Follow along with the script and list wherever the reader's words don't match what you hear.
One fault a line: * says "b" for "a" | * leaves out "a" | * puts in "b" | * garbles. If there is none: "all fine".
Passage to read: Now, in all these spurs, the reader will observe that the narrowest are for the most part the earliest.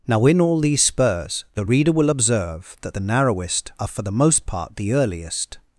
all fine